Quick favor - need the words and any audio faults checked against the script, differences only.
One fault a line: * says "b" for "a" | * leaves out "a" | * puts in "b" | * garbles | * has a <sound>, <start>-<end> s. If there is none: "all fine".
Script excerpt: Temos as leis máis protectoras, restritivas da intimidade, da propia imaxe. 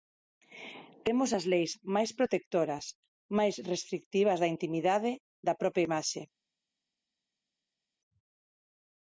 * puts in "máis"